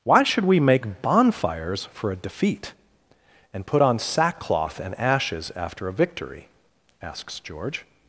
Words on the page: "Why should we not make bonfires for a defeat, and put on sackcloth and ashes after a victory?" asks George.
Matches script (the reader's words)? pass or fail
fail